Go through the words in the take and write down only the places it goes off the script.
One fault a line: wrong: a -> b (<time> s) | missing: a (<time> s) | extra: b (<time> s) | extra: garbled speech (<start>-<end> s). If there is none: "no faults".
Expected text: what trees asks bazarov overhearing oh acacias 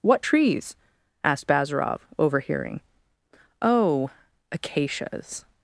wrong: asks -> asked (1.2 s)